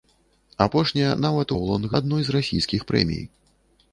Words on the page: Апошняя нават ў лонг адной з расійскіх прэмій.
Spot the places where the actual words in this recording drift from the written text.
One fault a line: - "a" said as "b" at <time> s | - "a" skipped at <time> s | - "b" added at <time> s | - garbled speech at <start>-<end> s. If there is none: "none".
none